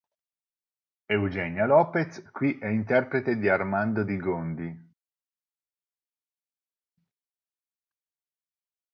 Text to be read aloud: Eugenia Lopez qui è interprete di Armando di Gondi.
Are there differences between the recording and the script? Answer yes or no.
no